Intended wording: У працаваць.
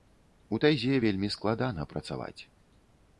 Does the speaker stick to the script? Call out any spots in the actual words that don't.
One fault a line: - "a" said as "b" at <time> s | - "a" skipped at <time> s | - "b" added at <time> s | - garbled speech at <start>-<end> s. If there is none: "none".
- "тайзе вельмі складана" added at 0.6 s